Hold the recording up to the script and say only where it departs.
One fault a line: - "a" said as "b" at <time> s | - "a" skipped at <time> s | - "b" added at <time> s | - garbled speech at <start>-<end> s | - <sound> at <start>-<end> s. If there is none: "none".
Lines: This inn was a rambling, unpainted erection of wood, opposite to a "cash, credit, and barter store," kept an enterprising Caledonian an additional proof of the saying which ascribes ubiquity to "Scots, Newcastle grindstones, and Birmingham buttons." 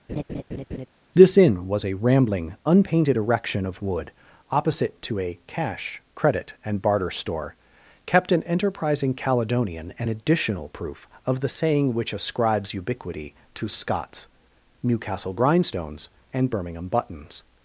- laugh at 0.1-0.9 s